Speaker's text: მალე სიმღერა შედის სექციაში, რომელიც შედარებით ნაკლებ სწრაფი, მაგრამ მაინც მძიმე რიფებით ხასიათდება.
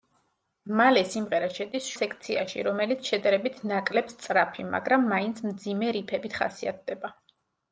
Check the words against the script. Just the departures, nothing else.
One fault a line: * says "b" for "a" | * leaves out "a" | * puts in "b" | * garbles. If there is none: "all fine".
all fine